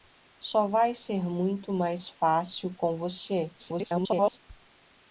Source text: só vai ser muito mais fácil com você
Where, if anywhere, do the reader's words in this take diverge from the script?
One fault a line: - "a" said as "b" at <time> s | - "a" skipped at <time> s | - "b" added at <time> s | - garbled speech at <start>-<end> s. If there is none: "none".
- garbled speech at 3.6-4.4 s